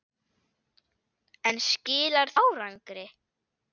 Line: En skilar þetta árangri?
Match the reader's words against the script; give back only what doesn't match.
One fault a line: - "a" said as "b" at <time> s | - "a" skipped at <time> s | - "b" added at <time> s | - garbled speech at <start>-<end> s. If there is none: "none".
- "þetta" skipped at 2.4 s